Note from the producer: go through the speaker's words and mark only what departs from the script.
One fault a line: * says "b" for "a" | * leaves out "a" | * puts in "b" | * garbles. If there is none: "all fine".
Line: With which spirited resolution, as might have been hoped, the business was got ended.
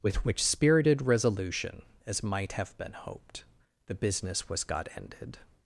all fine